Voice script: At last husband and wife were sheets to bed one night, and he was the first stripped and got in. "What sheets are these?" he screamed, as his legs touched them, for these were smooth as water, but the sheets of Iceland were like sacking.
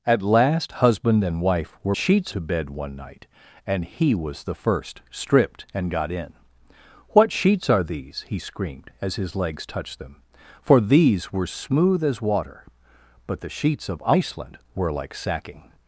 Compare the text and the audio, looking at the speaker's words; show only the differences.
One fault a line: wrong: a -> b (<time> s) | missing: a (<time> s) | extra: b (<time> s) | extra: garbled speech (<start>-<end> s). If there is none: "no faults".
no faults